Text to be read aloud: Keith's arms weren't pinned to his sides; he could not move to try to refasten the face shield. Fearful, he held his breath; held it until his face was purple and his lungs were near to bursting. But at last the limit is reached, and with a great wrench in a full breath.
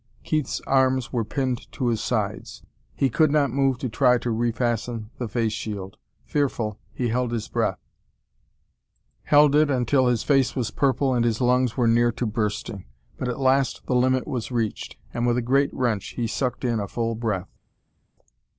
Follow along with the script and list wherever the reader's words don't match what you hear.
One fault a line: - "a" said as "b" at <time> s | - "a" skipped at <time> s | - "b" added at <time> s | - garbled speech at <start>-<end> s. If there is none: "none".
- "weren't" said as "were" at 1.1 s
- "is" said as "was" at 14.3 s
- "he sucked" added at 16.1 s